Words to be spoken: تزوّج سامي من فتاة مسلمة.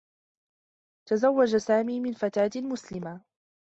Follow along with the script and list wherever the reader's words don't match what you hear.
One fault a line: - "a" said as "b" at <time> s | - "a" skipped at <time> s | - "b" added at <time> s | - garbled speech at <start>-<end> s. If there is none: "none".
none